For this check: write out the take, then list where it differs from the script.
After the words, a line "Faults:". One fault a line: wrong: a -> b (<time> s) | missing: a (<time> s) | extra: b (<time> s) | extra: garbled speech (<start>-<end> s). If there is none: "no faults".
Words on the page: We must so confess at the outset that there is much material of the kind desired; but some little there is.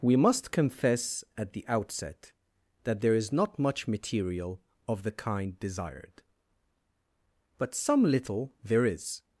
We must confess at the outset that there is not much material of the kind desired; but some little there is.
Faults:
missing: so (0.5 s)
extra: not (3.3 s)